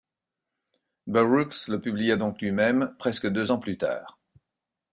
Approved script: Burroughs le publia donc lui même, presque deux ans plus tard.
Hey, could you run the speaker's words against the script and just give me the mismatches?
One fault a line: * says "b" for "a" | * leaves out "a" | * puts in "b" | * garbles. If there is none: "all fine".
all fine